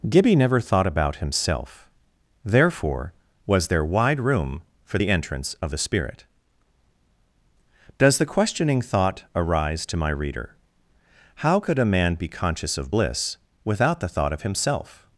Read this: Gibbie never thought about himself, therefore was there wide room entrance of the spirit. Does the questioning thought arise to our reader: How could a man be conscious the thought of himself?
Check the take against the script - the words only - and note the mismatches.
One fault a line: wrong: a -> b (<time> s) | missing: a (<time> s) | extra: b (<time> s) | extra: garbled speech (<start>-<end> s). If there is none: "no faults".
extra: for the (4.8 s)
wrong: our -> my (10.0 s)
extra: of bliss without (12.8 s)